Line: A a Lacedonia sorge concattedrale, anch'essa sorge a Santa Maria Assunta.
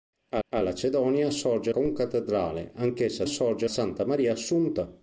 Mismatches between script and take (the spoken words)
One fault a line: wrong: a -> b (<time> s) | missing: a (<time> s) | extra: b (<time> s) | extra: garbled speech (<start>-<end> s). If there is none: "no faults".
no faults